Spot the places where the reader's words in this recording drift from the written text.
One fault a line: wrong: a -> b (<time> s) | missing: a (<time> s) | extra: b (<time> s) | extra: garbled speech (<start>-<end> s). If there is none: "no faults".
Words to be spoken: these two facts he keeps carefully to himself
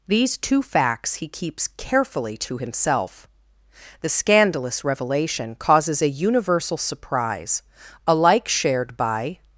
extra: the scandalous revelation causes a universal surprise alike shared by (4.0 s)